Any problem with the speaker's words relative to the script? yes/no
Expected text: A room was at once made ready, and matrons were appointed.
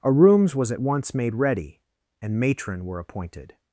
yes